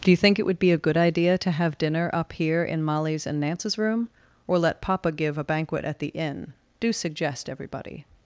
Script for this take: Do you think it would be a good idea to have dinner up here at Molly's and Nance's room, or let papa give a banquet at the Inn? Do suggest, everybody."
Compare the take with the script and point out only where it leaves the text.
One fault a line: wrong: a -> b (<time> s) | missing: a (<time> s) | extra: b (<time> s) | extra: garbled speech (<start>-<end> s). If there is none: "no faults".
wrong: at -> in (2.6 s)